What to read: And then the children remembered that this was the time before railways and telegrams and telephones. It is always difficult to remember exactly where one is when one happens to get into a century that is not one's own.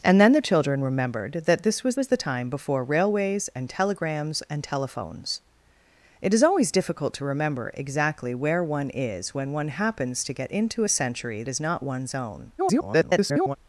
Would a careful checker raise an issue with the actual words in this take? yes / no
yes